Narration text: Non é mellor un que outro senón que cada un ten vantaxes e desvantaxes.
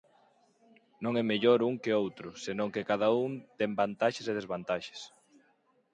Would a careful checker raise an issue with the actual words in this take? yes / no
no